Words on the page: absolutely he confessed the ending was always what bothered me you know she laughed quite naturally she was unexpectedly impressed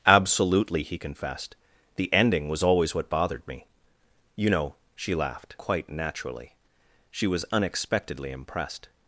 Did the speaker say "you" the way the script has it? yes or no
yes